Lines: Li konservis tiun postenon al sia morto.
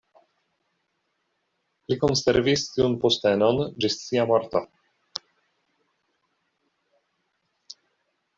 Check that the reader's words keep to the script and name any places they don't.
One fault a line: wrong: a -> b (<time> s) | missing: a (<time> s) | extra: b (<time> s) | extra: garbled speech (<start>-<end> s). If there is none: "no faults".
wrong: al -> ĝis (3.9 s)